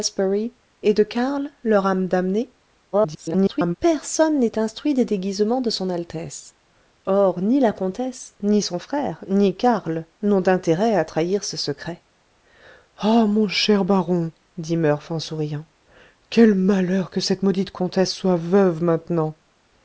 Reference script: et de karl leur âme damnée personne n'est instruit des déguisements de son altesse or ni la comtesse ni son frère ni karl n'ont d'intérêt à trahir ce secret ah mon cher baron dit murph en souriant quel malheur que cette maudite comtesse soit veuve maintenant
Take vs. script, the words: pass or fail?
fail